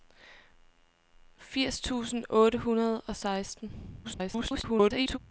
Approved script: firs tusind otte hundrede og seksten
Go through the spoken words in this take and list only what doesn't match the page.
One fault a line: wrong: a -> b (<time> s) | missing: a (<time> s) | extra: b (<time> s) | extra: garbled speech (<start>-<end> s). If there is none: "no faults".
extra: garbled speech (4.0-5.2 s)